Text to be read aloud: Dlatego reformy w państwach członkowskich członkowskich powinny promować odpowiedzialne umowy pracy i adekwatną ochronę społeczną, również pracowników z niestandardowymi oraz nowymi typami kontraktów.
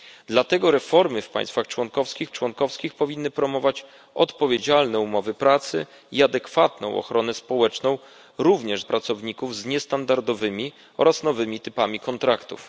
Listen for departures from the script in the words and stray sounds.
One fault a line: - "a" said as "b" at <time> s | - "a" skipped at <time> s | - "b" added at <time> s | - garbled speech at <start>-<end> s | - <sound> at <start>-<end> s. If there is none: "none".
none